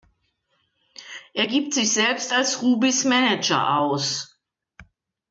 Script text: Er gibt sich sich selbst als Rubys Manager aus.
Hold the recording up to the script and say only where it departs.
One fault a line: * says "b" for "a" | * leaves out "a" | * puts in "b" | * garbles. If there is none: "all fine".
* leaves out "sich"